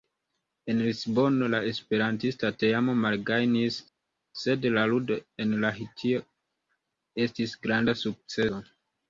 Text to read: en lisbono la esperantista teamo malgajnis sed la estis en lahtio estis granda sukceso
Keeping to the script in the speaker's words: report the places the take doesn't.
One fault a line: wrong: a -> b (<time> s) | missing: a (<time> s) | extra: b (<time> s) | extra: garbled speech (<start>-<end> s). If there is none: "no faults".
wrong: estis -> ludo (4.9 s)